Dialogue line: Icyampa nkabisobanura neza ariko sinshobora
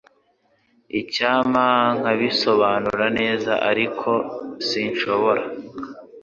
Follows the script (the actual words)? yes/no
yes